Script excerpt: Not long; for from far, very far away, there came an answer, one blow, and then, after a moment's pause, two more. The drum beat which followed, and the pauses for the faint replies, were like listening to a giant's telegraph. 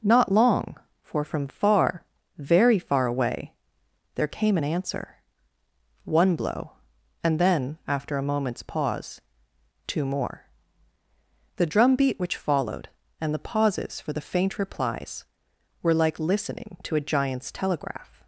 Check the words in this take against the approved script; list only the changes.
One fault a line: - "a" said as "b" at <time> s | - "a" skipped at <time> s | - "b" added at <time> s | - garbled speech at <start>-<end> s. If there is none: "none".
none